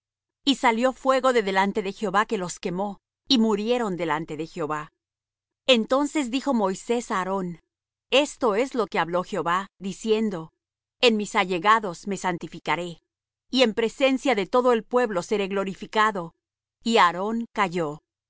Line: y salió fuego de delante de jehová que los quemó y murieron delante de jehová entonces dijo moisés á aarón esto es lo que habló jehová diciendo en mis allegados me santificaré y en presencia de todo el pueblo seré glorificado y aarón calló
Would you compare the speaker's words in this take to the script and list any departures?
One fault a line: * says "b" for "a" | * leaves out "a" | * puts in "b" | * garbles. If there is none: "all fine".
all fine